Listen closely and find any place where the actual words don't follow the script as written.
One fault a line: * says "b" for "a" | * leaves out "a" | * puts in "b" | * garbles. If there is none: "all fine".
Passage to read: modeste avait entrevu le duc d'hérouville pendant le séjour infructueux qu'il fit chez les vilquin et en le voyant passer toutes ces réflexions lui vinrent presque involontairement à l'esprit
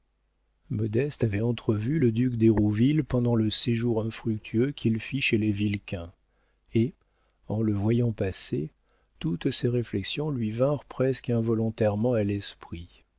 all fine